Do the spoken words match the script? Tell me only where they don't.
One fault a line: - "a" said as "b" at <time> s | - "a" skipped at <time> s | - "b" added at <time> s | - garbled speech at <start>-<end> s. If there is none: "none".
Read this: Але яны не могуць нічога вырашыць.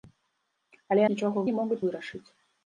- "яны" said as "нічога" at 1.1 s
- "нічога" skipped at 1.8 s